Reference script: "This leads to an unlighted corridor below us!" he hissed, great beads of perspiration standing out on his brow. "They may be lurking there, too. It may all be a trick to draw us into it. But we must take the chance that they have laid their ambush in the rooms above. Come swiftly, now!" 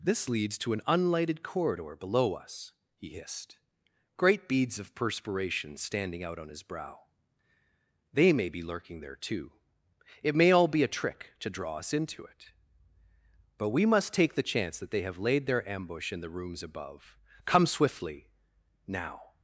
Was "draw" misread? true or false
false